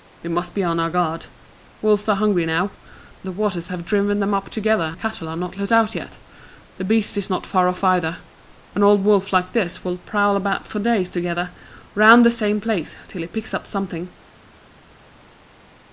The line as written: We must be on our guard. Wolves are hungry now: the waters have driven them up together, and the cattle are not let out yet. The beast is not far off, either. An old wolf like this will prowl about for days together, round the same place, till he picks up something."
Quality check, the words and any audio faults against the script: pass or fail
fail